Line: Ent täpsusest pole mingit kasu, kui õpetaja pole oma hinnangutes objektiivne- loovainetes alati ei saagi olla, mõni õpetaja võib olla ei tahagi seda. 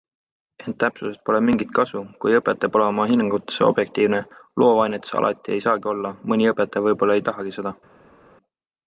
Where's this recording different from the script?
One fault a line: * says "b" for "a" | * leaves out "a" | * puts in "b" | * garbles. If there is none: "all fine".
all fine